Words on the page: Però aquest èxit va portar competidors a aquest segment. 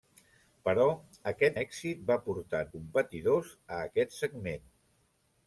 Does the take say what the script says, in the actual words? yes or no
yes